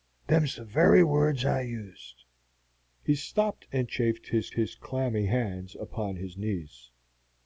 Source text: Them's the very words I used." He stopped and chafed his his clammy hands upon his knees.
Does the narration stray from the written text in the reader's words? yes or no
no